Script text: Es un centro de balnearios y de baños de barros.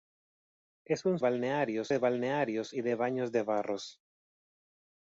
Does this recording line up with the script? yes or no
no